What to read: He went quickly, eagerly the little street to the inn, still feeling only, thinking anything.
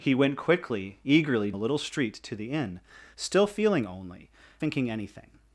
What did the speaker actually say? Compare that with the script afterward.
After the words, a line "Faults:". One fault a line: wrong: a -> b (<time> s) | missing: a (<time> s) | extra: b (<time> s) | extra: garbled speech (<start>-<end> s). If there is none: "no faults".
He went quickly, eagerly the little street to the inn, still feeling only, thinking anything.
Faults:
no faults